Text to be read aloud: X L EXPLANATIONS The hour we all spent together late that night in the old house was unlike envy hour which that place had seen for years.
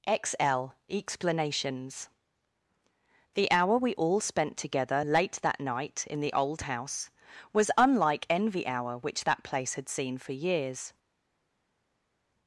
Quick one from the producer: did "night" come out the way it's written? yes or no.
yes